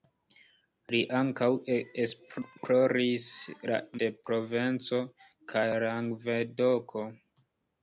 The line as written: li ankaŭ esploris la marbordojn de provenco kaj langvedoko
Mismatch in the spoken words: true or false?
true